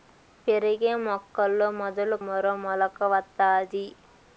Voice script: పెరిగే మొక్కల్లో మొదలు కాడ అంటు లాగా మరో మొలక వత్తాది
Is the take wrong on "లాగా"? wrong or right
wrong